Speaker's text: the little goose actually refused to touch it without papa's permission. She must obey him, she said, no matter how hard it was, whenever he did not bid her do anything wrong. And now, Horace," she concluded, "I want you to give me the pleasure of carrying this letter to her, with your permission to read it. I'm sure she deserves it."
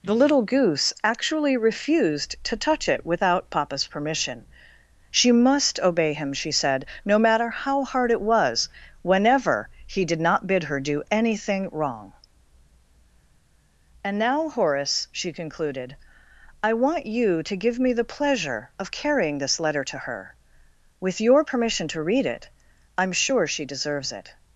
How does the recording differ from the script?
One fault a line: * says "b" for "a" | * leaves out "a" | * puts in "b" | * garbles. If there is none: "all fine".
all fine